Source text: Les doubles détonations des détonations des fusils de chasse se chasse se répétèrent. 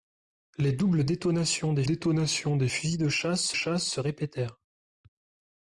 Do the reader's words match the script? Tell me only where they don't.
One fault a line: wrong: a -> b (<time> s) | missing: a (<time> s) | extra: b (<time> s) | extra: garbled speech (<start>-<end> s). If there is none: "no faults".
no faults